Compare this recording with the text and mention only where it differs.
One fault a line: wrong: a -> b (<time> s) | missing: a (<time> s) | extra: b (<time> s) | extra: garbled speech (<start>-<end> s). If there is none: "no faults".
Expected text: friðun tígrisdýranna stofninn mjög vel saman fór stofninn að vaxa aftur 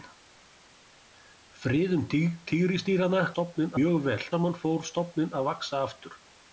no faults